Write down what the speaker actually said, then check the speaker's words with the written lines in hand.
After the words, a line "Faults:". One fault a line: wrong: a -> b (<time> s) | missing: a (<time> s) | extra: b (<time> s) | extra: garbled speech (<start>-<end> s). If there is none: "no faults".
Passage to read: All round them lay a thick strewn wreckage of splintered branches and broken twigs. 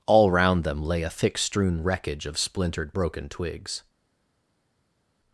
All round them lay a thick strewn wreckage of splintered broken twigs.
Faults:
missing: branches and (2.9 s)